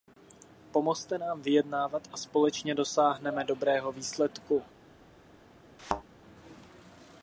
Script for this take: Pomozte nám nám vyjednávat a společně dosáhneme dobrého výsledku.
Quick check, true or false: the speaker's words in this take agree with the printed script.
false